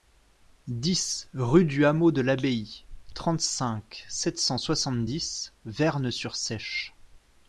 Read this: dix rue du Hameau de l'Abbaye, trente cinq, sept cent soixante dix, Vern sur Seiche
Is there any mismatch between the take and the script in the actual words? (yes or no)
no